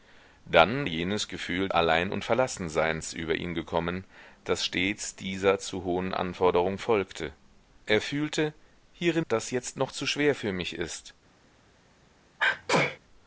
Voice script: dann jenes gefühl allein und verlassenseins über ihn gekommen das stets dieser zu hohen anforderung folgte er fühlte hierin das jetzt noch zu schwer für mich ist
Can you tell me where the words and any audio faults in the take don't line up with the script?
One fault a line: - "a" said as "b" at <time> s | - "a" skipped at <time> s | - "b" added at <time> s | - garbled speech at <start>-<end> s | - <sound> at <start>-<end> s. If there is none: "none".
- sneeze at 12.4-13.0 s